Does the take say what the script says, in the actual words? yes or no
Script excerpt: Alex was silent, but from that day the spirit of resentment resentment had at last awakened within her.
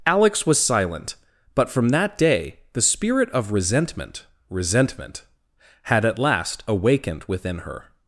yes